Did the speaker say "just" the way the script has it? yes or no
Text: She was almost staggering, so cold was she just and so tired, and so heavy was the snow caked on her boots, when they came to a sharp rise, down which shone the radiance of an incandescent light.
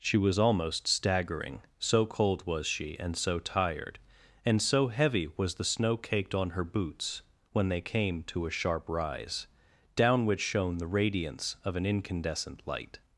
no